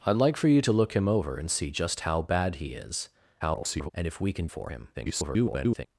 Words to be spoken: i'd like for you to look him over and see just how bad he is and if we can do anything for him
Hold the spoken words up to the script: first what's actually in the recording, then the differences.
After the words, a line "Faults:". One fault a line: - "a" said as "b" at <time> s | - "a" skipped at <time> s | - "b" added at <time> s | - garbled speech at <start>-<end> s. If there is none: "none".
i'd like for you to look him over and see just how bad he is [garbled] and if we can for him [garbled]
Faults:
- garbled speech at 3.4-3.9 s
- "do anything" skipped at 4.5 s
- garbled speech at 4.9-5.9 s